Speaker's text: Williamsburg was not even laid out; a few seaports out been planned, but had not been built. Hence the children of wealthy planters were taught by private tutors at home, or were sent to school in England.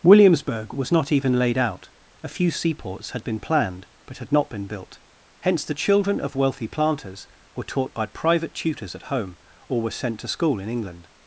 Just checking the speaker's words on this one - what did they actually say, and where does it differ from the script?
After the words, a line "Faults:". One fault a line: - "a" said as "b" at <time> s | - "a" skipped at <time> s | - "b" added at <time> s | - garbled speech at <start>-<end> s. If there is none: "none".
Williamsburg was not even laid out; a few seaports had been planned, but had not been built. Hence the children of wealthy planters were taught by private tutors at home, or were sent to school in England.
Faults:
- "out" said as "had" at 3.1 s